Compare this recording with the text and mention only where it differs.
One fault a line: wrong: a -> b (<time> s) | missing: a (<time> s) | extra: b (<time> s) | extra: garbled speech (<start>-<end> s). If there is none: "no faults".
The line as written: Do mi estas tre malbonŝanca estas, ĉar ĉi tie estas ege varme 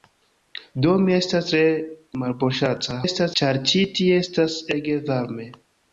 no faults